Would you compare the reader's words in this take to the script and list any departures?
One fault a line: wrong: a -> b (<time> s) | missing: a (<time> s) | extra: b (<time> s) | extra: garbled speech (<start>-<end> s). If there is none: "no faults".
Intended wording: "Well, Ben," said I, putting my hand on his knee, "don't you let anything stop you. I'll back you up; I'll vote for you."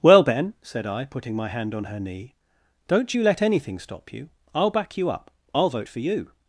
wrong: his -> her (1.8 s)